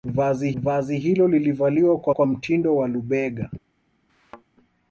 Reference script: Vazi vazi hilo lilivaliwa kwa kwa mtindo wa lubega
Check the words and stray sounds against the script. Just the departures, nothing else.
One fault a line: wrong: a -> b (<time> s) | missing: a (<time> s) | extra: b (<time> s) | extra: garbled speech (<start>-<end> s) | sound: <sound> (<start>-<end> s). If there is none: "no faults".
sound: thud (4.1-4.4 s)